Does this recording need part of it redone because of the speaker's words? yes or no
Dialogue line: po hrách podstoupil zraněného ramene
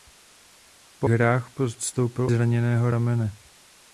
no